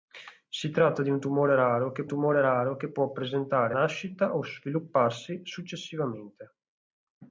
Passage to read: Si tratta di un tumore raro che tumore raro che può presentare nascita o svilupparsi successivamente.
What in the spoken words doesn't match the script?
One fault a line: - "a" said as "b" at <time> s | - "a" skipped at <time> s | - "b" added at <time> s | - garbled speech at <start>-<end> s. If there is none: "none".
none